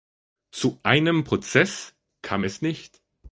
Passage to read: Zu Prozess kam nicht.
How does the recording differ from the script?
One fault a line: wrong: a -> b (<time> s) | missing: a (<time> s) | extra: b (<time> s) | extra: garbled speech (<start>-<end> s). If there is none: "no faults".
extra: einem (0.8 s)
extra: es (2.4 s)